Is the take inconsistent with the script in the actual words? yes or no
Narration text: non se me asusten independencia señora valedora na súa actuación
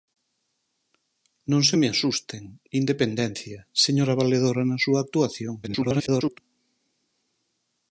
yes